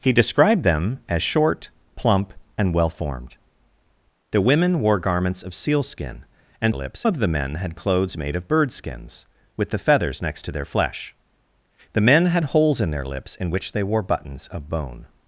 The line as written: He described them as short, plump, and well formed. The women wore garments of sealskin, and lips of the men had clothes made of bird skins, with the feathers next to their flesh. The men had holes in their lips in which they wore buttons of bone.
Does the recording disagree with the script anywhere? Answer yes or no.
no